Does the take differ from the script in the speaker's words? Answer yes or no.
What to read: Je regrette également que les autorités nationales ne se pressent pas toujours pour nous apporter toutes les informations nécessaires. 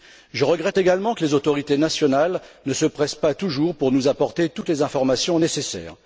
no